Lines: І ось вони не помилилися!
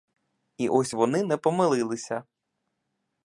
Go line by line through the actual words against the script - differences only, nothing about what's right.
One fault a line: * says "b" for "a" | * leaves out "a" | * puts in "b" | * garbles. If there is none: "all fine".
all fine